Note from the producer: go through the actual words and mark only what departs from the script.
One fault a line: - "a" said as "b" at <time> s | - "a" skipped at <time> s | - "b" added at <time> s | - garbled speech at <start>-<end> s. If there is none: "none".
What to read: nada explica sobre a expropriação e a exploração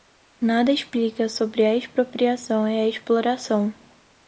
none